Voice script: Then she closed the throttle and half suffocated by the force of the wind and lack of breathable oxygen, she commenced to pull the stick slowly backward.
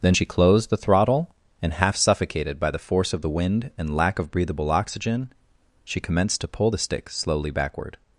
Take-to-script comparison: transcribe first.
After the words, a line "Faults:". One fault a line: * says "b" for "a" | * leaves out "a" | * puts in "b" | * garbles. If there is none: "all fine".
Then she closed the throttle and half suffocated by the force of the wind and lack of breathable oxygen, she commenced to pull the stick slowly backward.
Faults:
all fine